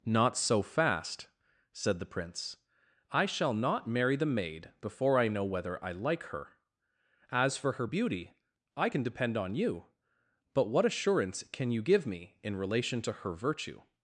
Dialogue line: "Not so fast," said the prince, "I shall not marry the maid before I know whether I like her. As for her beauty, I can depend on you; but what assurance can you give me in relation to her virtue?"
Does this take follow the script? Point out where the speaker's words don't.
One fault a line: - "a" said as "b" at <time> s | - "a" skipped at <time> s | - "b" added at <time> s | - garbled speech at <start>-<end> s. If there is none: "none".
none